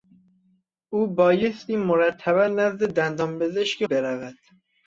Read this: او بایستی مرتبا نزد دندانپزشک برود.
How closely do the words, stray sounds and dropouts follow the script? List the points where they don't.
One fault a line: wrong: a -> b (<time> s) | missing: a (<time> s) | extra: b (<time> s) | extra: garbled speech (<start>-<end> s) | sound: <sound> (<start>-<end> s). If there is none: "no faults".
no faults